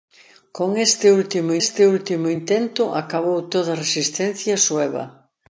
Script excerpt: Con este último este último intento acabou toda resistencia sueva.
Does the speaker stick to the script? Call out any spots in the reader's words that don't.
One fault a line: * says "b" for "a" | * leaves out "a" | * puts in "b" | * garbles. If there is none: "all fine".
all fine